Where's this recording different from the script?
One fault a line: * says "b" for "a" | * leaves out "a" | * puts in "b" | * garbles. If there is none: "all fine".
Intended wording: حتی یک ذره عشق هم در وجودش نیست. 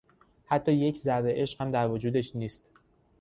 all fine